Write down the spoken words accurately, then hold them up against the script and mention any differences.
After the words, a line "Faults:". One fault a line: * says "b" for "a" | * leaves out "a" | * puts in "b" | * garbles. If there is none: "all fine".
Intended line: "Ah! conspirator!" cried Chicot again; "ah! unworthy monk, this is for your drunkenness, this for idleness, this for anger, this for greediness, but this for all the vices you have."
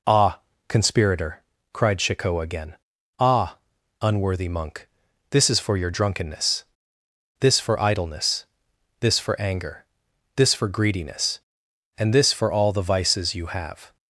"Ah! conspirator!" cried Chicot again; "ah! unworthy monk, this is for your drunkenness, this for idleness, this for anger, this for greediness, and this for all the vices you have."
Faults:
* says "and" for "but"